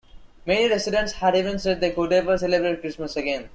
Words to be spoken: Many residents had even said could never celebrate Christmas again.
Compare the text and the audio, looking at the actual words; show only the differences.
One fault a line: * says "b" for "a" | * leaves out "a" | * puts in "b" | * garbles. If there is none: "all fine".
* puts in "they"